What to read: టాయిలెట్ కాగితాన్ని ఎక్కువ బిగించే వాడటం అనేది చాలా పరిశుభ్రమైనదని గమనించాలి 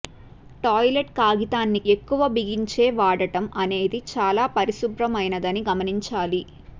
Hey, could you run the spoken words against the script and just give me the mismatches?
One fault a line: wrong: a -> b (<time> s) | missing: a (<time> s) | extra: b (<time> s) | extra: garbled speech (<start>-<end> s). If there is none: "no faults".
no faults